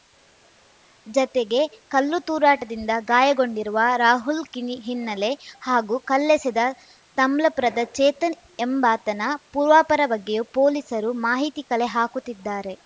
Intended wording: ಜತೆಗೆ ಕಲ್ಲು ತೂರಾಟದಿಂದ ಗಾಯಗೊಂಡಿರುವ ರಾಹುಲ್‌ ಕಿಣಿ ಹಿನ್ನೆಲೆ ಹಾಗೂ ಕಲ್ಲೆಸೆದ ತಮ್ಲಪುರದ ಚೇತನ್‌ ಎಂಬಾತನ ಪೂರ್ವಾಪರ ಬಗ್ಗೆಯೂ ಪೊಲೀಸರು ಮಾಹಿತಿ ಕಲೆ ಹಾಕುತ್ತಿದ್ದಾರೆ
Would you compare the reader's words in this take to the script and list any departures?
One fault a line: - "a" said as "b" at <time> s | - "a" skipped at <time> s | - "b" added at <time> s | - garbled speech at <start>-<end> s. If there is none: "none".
none